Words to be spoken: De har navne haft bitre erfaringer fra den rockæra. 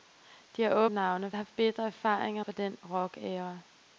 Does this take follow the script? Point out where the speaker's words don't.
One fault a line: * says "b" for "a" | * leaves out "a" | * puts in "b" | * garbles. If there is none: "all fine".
all fine